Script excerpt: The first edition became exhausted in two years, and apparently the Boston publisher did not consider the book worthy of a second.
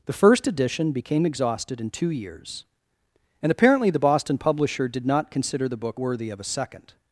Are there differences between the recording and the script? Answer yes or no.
no